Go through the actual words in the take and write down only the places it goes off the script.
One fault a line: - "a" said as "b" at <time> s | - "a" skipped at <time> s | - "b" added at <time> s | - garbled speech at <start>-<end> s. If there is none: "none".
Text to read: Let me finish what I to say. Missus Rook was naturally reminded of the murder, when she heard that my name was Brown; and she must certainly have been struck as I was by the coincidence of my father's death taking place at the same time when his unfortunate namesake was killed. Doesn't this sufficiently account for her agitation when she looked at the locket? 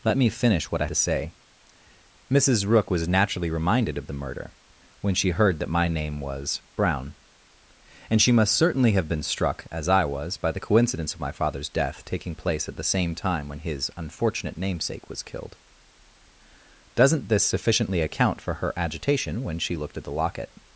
none